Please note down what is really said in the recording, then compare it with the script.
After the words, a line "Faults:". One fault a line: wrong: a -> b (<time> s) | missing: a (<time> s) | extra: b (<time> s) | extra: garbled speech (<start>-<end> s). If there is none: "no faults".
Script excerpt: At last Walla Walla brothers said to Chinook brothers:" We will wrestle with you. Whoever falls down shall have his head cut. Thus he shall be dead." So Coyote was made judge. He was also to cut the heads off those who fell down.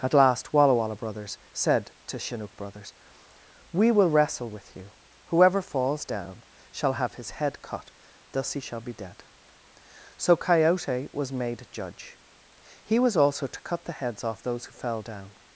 At last Walla Walla brothers said to Chinook brothers:" We will wrestle with you. Whoever falls down shall have his head cut. Thus he shall be dead." So Coyote was made judge. He was also to cut the heads off those who fell down.
Faults:
no faults